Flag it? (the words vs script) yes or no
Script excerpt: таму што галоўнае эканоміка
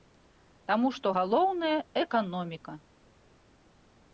no